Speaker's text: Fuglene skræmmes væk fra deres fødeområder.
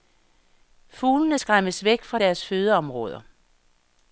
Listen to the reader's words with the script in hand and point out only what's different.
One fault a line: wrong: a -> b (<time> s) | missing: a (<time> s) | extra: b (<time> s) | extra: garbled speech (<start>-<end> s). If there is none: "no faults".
no faults